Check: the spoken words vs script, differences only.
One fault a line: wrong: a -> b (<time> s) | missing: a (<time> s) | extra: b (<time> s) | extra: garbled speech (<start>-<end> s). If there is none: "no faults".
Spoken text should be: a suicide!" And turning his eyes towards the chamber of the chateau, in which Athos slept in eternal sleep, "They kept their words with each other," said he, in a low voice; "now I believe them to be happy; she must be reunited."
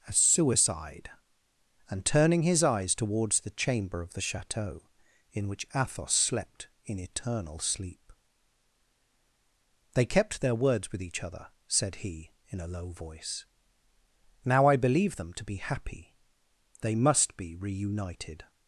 wrong: she -> they (16.8 s)